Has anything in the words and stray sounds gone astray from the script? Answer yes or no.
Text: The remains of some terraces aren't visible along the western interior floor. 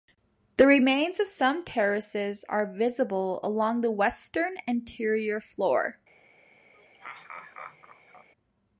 yes